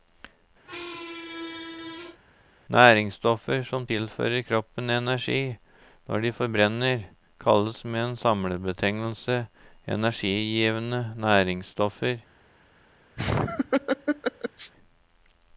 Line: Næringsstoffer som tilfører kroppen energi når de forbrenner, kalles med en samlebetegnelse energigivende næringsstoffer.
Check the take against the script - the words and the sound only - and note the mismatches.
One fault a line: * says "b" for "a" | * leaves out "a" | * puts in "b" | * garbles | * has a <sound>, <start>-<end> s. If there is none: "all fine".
* has a squeak, 0.6-2.2 s
* has a laugh, 13.2-14.7 s